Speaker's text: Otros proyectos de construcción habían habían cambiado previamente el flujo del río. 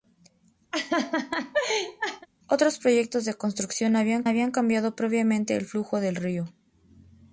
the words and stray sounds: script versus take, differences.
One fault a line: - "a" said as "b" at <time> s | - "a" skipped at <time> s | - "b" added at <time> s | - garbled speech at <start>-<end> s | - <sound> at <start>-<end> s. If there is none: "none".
- laugh at 0.7-2.3 s